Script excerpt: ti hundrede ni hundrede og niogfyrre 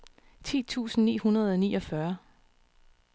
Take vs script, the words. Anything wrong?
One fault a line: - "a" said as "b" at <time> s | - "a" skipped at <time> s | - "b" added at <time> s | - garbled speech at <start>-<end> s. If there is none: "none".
- "hundrede" said as "tusind" at 0.6 s